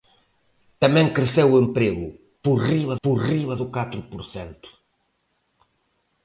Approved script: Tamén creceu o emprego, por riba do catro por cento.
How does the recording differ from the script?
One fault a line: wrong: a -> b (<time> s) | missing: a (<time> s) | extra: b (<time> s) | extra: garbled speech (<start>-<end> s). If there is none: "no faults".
extra: por riba (3.0 s)